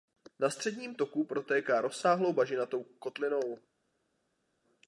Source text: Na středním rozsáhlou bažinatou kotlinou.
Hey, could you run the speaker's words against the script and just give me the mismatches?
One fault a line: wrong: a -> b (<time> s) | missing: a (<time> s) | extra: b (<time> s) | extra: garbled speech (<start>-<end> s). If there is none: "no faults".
extra: toku protéká (0.9 s)